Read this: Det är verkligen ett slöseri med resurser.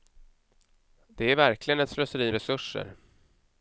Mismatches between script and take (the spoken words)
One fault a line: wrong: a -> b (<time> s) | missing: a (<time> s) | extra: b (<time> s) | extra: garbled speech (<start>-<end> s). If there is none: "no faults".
missing: med (2.3 s)